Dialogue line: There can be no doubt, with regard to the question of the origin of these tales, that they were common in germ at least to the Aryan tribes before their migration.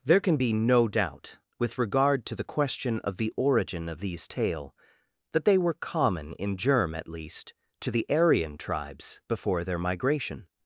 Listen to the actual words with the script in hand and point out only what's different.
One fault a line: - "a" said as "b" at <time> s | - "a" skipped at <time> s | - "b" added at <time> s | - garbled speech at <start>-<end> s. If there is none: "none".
- "tales" said as "tale" at 4.3 s